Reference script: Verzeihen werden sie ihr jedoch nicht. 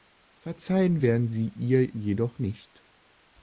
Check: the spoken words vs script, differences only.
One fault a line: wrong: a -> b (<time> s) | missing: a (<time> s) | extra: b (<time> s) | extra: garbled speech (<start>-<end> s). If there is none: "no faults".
no faults